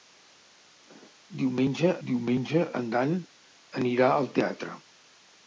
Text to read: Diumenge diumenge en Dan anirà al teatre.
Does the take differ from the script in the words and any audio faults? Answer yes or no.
no